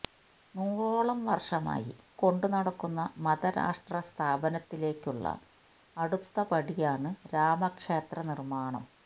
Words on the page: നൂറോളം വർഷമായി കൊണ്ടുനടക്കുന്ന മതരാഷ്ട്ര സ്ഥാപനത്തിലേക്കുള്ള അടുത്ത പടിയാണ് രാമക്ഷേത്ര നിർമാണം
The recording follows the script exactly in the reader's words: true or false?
true